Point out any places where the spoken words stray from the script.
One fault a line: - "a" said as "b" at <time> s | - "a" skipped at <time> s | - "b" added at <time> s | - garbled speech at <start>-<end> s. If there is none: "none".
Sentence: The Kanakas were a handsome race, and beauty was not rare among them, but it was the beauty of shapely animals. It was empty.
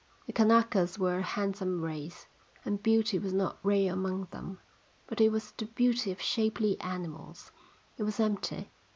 none